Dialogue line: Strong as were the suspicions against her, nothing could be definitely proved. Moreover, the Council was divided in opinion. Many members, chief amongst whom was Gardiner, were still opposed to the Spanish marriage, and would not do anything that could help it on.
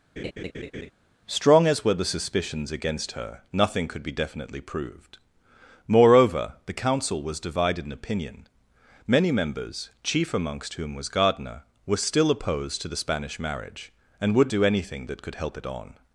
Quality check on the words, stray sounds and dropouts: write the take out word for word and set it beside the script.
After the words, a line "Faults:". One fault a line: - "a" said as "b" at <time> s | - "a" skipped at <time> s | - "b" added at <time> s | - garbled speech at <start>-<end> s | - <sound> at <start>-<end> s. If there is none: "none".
Strong as were the suspicions against her, nothing could be definitely proved. Moreover, the Council was divided in opinion. Many members, chief amongst whom was Gardiner, were still opposed to the Spanish marriage, and would do anything that could help it on.
Faults:
- laugh at 0.2-0.9 s
- "not" skipped at 14.5 s